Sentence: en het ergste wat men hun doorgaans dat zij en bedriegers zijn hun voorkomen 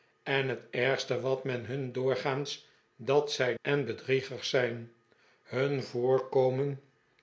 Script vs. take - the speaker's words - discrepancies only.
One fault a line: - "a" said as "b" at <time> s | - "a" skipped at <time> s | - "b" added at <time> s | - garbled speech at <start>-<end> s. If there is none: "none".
none